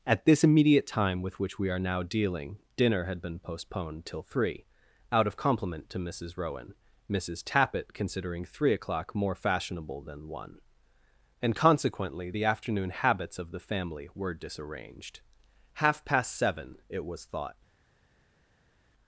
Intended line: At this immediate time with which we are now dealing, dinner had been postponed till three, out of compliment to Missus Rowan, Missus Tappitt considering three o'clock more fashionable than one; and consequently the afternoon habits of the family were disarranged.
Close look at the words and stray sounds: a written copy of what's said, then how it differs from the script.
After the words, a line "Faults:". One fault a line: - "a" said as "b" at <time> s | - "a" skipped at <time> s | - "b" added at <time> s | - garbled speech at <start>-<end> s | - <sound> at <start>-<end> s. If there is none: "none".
At this immediate time with which we are now dealing, dinner had been postponed till three, out of compliment to Missus Rowan, Missus Tappitt considering three o'clock more fashionable than one; and consequently the afternoon habits of the family were disarranged. Half past seven, it was thought
Faults:
- "Half past seven it was thought" added at 15.7 s